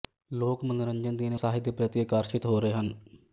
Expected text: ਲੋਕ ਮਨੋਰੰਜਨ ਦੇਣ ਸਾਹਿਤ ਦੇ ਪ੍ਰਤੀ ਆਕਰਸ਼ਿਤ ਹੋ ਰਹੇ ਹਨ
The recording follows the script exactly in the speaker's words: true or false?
true